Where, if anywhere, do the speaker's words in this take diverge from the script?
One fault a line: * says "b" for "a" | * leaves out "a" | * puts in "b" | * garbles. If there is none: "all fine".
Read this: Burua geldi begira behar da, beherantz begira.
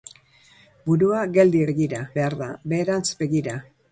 all fine